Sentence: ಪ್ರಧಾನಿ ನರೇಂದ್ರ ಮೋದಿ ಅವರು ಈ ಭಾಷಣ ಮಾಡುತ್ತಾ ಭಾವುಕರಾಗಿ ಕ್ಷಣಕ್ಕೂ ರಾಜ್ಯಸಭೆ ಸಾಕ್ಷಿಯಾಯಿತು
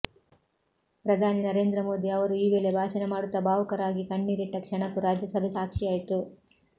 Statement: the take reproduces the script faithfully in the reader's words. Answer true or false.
false